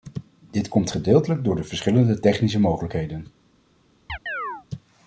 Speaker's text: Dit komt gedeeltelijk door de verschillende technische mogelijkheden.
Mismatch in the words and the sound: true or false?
true